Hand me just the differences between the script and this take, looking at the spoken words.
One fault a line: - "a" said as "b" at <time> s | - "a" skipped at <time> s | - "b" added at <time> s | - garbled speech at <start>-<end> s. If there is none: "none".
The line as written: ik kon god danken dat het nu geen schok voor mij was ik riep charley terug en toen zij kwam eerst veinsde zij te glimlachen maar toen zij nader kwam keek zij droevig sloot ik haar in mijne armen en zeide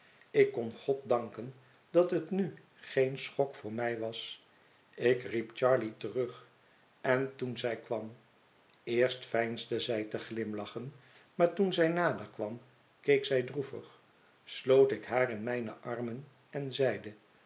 none